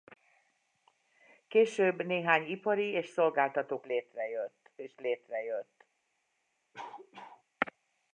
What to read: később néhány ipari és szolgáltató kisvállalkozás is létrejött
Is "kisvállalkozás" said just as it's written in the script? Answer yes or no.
no